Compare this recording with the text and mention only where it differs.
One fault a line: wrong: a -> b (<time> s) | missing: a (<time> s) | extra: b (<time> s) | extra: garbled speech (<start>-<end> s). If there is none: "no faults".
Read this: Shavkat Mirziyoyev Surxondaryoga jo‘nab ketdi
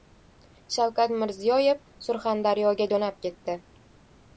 no faults